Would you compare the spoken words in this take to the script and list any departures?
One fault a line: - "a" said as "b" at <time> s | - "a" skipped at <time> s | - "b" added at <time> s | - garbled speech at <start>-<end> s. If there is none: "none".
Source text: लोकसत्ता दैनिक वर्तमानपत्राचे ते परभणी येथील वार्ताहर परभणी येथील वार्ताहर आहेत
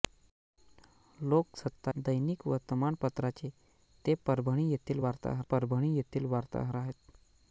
none